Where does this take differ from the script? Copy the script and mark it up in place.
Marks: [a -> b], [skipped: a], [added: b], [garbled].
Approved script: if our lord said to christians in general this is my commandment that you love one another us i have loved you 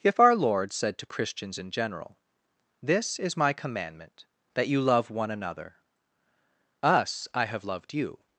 if our lord said to christians in general this is my commandment that you love one another us i have loved you